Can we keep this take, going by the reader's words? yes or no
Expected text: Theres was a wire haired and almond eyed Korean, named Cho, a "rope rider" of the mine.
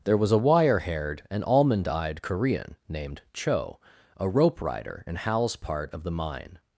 no